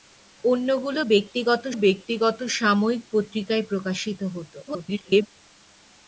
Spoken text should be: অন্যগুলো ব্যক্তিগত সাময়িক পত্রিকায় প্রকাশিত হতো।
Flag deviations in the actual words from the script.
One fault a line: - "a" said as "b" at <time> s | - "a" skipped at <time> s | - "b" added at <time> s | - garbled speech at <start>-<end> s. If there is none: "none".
- "ব্যক্তিগত" added at 1.7 s
- garbled speech at 4.7-5.3 s